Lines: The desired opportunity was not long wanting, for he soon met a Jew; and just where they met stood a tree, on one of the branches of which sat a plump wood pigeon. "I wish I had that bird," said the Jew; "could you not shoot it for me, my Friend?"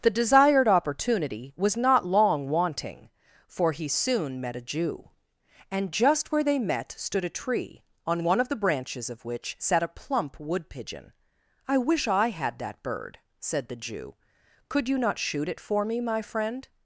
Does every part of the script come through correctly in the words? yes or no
yes